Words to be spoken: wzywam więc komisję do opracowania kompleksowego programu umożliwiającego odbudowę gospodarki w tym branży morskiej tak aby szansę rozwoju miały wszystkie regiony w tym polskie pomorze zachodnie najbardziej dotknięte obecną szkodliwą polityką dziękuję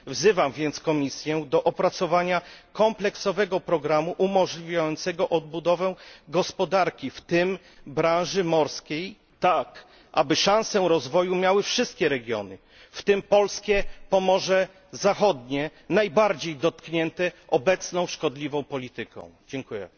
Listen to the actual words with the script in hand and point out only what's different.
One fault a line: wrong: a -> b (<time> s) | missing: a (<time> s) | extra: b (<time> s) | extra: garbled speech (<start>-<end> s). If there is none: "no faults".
no faults